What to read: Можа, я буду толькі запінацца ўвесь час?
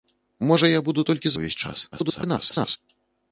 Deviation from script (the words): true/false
true